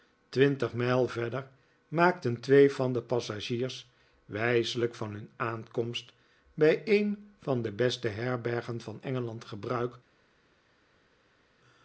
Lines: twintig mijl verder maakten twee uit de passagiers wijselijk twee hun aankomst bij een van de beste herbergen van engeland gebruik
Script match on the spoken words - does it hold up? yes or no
no